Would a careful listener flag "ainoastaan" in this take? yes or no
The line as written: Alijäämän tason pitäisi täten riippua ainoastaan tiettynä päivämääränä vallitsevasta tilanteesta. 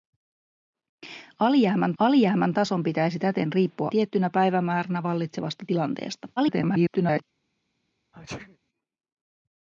yes